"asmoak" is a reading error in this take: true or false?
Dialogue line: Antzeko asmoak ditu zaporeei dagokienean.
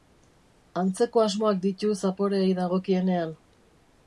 false